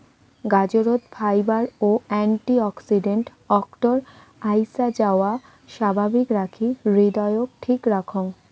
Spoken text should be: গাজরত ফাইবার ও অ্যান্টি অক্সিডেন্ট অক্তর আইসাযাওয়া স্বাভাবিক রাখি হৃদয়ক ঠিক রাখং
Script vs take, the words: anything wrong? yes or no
no